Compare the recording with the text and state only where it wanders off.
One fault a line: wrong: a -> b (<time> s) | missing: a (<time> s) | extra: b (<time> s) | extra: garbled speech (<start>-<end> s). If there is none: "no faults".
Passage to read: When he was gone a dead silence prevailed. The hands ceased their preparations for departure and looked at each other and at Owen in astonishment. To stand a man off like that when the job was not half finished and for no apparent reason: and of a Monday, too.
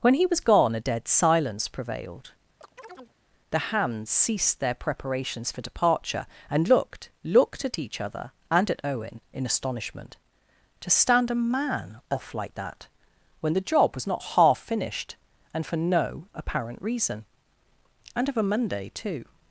extra: looked (7.2 s)